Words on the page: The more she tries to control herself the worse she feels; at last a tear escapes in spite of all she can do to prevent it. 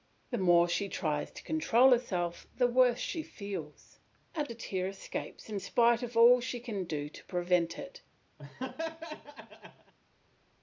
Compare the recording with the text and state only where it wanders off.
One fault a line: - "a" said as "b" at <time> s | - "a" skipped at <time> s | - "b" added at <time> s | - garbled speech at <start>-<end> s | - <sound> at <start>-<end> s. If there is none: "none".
- "last" skipped at 4.5 s
- laugh at 8.4-9.9 s